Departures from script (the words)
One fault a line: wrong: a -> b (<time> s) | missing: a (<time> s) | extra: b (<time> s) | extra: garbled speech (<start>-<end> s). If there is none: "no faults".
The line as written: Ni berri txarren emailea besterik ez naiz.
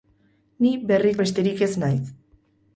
missing: txarren emailea (1.1 s)